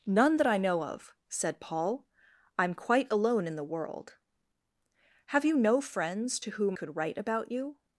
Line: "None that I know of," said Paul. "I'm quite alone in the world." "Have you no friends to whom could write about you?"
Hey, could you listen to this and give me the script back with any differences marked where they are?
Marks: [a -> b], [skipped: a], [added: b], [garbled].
"None that I know of," said Paul. "I'm quite alone in the world." "Have you no friends to whom could write about you?"